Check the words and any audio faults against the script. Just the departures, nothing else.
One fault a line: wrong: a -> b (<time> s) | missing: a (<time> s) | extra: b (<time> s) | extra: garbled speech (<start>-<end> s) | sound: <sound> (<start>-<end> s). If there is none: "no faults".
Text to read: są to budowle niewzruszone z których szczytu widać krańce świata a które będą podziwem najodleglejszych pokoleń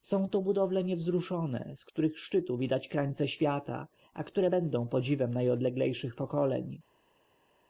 no faults